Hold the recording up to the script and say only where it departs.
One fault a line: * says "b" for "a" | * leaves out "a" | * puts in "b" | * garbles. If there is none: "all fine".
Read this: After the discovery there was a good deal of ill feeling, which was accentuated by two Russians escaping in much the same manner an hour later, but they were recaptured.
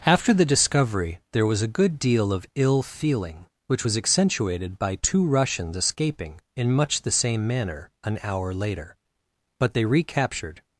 * leaves out "were"